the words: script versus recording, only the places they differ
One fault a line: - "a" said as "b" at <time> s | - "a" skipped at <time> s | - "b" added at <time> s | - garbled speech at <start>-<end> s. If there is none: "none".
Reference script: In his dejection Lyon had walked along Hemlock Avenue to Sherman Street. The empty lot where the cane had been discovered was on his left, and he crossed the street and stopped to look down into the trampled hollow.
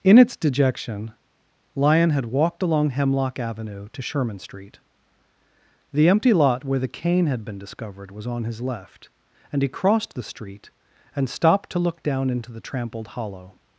- "his" said as "its" at 0.2 s